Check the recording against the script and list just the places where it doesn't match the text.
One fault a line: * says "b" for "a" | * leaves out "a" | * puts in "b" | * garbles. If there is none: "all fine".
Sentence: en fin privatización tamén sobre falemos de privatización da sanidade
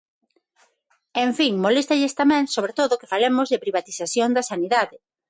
* says "moléstalles" for "privatización"
* puts in "todo que"